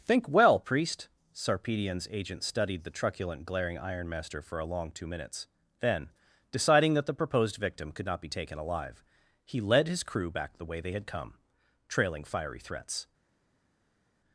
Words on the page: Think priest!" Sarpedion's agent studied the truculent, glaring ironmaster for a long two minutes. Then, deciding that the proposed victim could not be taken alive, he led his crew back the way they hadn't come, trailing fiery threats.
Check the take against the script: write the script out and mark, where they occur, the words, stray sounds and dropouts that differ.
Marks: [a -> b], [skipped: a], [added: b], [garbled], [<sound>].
Think [added: well] priest!" Sarpedion's agent studied the truculent, glaring ironmaster for a long two minutes. Then, deciding that the proposed victim could not be taken alive, he led his crew back the way they [hadn't -> had] come, trailing fiery threats.